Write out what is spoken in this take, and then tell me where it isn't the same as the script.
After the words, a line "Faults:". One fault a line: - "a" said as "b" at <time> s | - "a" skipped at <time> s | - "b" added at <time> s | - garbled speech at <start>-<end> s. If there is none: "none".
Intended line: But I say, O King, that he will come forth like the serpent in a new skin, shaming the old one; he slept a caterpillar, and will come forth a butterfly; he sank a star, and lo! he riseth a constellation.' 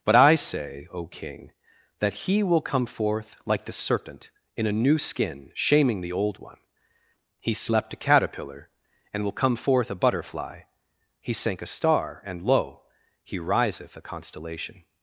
But I say, O King, that he will come forth like the serpent in a new skin, shaming the old one; he slept a caterpillar, and will come forth a butterfly; he sank a star, and lo! he riseth a constellation.'
Faults:
none